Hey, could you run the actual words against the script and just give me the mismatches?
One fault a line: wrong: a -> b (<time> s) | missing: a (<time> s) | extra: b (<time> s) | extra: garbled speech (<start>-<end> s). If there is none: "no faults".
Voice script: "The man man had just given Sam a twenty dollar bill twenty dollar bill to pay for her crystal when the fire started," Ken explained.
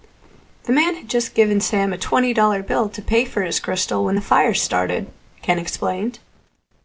missing: man (0.9 s)
missing: twenty dollar bill (2.9 s)
wrong: her -> his (3.4 s)